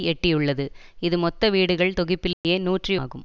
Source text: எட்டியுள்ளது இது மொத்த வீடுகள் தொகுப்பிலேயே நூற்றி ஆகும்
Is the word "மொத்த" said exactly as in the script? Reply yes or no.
yes